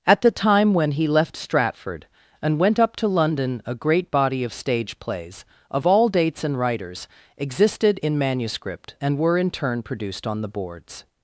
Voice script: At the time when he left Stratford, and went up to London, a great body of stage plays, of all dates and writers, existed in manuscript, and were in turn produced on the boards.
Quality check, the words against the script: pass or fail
pass